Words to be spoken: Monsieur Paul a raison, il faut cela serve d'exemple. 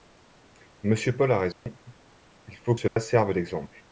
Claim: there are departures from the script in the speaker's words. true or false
false